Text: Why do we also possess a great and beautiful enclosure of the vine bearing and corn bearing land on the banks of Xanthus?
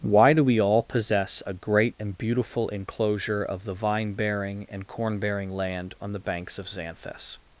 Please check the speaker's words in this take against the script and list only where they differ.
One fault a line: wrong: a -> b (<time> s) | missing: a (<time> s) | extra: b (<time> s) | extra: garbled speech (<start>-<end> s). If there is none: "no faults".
wrong: also -> all (0.6 s)